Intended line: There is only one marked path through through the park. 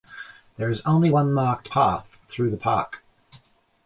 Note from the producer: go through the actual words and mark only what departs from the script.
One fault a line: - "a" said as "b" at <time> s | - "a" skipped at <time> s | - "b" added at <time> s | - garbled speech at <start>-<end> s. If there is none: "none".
- "through" skipped at 2.5 s